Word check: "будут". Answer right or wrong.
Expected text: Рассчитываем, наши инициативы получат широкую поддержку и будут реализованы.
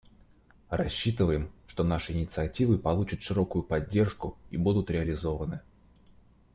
right